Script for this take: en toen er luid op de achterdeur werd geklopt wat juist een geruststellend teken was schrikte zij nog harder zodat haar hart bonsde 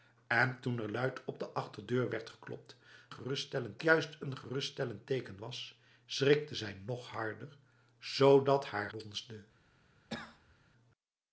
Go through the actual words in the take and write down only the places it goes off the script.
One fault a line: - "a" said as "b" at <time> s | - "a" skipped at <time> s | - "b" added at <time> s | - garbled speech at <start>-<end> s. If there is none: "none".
- "wat" said as "geruststellend" at 3.1 s
- "hart" skipped at 8.9 s